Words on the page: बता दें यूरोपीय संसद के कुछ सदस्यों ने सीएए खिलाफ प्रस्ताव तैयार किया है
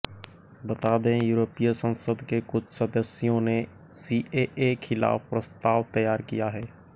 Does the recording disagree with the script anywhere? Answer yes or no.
no